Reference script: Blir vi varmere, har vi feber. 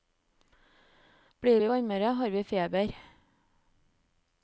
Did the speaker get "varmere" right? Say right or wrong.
right